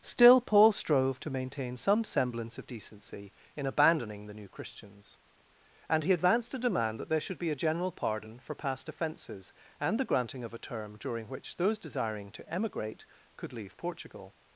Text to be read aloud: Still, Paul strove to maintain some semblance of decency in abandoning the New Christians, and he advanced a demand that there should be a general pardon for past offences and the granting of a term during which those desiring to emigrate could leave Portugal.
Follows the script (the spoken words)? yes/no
yes